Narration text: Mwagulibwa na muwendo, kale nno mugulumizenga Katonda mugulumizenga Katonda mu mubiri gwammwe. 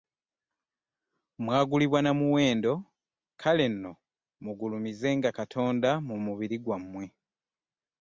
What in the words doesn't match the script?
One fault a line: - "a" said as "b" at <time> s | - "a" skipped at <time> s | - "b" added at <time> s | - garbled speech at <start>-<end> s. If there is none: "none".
- "mugulumizenga Katonda" skipped at 5.9 s